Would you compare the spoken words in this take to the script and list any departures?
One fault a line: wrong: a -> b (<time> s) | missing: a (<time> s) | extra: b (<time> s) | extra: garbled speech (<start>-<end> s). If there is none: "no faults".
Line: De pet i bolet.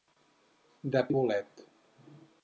missing: pet (1.0 s)